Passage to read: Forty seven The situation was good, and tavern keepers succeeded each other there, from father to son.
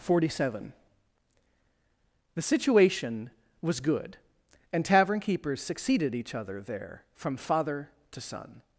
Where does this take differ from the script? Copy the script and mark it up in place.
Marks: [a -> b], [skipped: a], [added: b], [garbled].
Forty seven The situation was good, and tavern keepers succeeded each other there, from father to son.